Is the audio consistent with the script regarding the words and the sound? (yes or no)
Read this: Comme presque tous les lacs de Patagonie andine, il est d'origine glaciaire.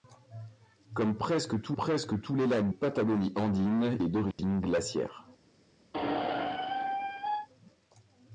no